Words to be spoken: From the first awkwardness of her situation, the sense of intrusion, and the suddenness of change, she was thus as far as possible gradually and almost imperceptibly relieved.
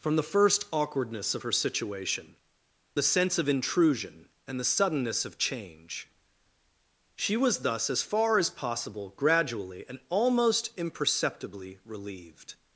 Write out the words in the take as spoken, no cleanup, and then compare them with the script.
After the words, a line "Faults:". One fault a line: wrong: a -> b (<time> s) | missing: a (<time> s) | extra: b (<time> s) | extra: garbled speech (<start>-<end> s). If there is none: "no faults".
From the first awkwardness of her situation, the sense of intrusion, and the suddenness of change, she was thus as far as possible gradually and almost imperceptibly relieved.
Faults:
no faults